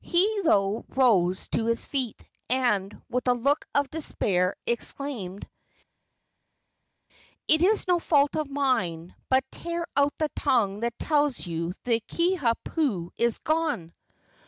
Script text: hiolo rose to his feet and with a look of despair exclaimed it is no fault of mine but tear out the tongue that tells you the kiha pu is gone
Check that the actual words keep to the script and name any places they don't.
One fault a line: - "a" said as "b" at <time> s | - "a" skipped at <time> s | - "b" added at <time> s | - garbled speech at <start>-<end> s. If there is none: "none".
none